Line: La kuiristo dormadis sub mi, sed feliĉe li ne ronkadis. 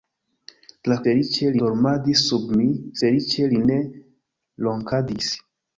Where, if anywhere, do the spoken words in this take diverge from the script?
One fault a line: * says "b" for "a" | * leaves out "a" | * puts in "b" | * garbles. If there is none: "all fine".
* says "feliĉe" for "kuiristo"
* leaves out "sed"